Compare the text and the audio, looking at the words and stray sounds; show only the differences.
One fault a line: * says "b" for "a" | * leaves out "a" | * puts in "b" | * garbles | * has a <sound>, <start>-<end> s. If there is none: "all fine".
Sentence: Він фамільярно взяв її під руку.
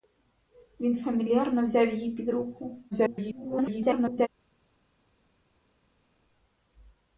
* garbles